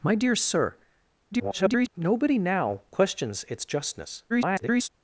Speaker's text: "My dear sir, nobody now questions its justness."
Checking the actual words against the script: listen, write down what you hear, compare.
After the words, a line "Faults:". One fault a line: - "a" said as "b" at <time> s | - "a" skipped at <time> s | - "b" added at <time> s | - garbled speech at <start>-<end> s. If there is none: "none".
"My dear sir, [garbled] nobody now questions its justness." [garbled]
Faults:
- garbled speech at 1.3-1.9 s
- garbled speech at 4.3-4.9 s